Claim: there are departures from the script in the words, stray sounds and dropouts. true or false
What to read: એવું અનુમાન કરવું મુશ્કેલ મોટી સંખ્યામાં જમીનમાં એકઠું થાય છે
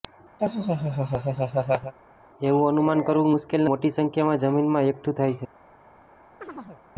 true